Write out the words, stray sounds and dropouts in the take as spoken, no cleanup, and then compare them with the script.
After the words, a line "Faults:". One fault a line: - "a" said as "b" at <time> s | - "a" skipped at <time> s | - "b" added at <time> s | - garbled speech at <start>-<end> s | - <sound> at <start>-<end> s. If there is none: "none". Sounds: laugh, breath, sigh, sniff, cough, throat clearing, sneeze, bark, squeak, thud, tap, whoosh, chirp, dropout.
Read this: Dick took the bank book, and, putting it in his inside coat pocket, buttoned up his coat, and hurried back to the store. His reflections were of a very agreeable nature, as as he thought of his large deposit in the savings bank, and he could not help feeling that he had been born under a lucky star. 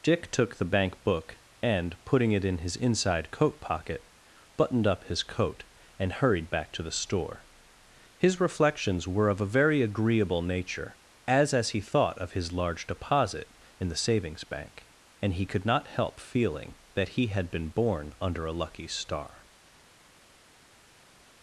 Dick took the bank book, and, putting it in his inside coat pocket, buttoned up his coat, and hurried back to the store. His reflections were of a very agreeable nature, as as he thought of his large deposit in the savings bank, and he could not help feeling that he had been born under a lucky star.
Faults:
none